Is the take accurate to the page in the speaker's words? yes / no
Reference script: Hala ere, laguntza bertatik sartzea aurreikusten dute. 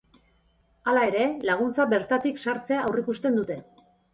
yes